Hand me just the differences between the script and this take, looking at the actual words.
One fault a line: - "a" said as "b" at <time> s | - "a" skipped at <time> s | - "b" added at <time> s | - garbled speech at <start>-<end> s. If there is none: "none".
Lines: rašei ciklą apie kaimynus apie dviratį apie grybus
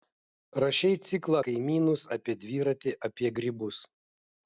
- "apie" skipped at 1.4 s